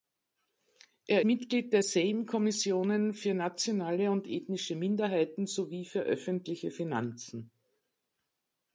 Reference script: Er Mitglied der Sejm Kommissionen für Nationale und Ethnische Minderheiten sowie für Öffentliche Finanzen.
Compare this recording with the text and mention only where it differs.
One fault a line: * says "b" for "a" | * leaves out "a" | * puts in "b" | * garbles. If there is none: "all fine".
all fine